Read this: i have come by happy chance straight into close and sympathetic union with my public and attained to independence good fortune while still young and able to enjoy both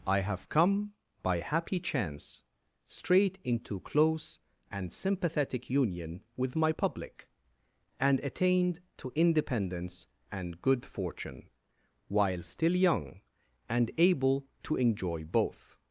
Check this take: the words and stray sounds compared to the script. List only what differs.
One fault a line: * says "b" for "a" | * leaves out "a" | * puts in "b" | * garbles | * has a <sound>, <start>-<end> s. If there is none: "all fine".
* puts in "and"